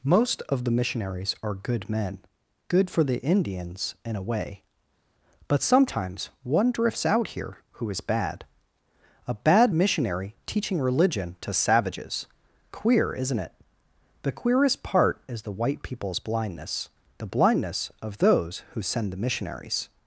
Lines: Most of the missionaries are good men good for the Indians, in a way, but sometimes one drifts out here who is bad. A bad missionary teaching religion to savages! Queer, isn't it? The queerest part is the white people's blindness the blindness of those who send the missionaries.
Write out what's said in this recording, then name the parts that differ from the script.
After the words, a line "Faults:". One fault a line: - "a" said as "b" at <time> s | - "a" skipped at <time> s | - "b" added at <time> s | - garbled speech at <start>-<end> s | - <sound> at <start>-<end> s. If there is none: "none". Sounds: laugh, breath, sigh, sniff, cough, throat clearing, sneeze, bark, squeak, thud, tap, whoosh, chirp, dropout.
Most of the missionaries are good men good for the Indians, in a way, but sometimes one drifts out here who is bad. A bad missionary teaching religion to savages! Queer, isn't it? The queerest part is the white people's blindness the blindness of those who send the missionaries.
Faults:
none